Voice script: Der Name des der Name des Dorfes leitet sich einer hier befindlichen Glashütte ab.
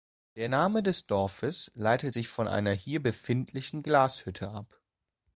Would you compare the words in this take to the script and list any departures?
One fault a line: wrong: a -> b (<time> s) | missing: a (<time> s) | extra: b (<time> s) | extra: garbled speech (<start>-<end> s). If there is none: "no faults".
missing: der Name des (1.1 s)
extra: von (2.3 s)